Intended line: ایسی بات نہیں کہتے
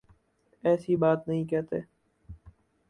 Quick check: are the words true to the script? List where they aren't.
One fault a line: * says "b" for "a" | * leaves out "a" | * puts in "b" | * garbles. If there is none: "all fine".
all fine